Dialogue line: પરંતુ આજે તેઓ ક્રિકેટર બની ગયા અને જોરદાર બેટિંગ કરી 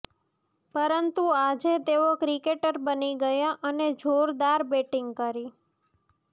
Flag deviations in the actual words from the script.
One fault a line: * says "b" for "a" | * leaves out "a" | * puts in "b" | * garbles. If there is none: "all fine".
all fine